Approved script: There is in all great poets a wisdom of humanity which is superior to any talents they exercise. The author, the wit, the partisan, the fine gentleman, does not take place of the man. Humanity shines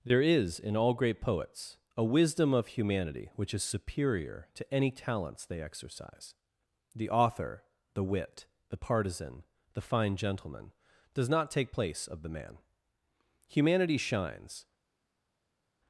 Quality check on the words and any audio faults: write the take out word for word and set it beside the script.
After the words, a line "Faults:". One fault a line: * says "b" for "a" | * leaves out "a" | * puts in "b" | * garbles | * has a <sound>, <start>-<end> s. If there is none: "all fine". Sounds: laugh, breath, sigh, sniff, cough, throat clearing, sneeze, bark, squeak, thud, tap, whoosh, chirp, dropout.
There is in all great poets a wisdom of humanity which is superior to any talents they exercise. The author, the wit, the partisan, the fine gentleman, does not take place of the man. Humanity shines
Faults:
all fine